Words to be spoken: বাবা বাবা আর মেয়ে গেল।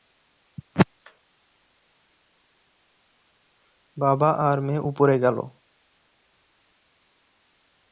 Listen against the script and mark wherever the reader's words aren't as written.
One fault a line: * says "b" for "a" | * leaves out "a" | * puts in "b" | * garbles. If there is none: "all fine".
* leaves out "বাবা"
* puts in "উপরে"